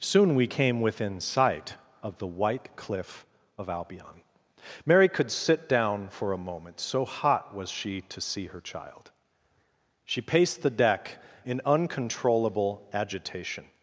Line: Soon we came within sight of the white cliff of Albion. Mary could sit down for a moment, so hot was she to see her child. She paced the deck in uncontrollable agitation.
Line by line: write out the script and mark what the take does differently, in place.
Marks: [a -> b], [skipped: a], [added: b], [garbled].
Soon we came within sight of the white cliff of Albion. Mary could sit down for a moment, so hot was she to see her child. She paced the deck in uncontrollable agitation.